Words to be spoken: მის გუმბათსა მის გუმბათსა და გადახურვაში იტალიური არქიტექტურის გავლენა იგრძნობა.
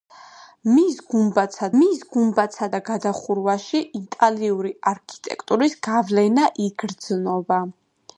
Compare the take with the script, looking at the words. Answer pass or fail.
pass